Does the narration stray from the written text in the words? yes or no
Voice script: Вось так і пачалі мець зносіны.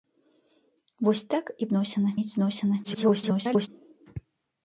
yes